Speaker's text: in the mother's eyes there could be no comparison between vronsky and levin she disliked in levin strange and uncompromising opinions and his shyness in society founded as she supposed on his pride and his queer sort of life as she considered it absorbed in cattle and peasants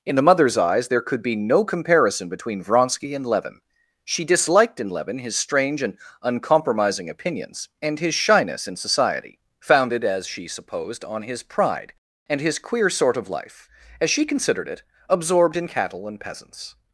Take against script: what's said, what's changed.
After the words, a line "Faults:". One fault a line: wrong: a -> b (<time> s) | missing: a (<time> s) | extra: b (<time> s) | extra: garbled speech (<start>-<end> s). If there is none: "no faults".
in the mother's eyes there could be no comparison between vronsky and levin she disliked in levin his strange and uncompromising opinions and his shyness in society founded as she supposed on his pride and his queer sort of life as she considered it absorbed in cattle and peasants
Faults:
extra: his (5.2 s)